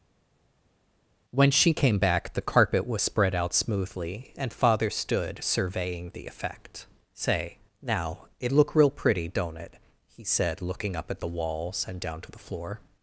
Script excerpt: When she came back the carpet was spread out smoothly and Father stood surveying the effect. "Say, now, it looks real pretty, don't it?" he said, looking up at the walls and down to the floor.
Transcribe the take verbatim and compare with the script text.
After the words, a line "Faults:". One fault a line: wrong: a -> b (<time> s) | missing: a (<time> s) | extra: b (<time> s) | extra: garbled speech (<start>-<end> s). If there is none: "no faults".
When she came back the carpet was spread out smoothly and Father stood surveying the effect. "Say, now, it look real pretty, don't it?" he said, looking up at the walls and down to the floor.
Faults:
wrong: looks -> look (8.5 s)